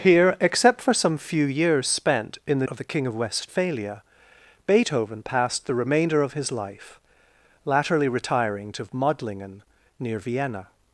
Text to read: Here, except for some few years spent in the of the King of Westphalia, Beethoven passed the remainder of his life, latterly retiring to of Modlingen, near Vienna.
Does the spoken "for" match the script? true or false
true